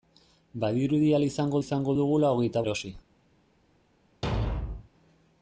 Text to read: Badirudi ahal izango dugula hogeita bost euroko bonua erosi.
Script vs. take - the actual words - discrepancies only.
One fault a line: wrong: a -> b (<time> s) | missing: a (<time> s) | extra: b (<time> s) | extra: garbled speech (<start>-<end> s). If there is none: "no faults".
extra: izango (1.6 s)
missing: bost euroko bonua (2.6 s)